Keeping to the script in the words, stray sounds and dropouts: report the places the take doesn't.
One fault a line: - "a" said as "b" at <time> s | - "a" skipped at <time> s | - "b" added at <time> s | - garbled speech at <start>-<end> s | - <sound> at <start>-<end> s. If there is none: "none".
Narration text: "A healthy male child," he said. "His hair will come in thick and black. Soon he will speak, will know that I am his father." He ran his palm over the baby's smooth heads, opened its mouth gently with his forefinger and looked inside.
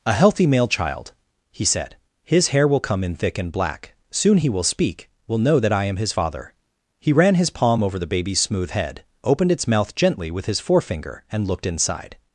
- "heads" said as "head" at 8.7 s